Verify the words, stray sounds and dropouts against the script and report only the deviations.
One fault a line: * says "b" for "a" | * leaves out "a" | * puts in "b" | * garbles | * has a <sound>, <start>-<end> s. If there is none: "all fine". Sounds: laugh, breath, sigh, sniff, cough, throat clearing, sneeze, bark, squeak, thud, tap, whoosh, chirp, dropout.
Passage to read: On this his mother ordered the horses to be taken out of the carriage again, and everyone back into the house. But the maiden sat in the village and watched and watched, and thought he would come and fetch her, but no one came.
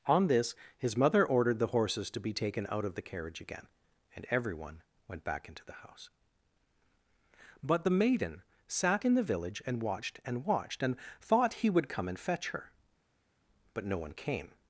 * puts in "went"